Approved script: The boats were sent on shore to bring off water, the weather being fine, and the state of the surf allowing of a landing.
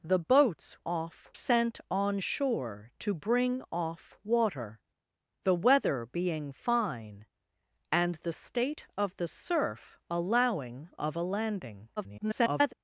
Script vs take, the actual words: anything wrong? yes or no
yes